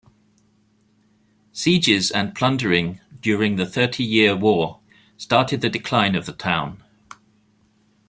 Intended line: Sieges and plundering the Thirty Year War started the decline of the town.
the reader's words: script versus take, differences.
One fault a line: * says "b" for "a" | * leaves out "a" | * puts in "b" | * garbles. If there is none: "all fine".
* puts in "during"